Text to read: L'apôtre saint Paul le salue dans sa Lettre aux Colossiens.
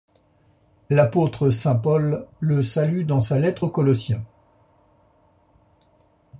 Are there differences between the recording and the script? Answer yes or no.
no